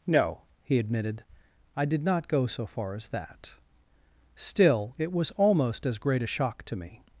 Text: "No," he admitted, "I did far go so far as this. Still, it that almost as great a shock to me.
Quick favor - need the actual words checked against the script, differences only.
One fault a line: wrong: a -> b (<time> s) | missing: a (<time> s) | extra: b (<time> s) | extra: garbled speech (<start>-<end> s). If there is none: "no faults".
wrong: far -> not (2.0 s)
wrong: this -> that (3.1 s)
wrong: that -> was (5.1 s)